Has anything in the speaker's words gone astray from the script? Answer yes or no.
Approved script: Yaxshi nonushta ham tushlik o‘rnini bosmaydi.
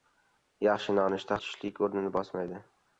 yes